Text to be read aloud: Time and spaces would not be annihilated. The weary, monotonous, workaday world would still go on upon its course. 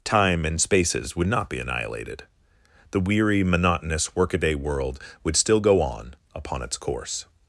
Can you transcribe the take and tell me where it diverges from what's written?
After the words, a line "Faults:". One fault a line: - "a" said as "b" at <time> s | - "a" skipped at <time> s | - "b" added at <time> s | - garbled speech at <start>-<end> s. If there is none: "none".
Time and spaces would not be annihilated. The weary, monotonous, workaday world would still go on upon its course.
Faults:
none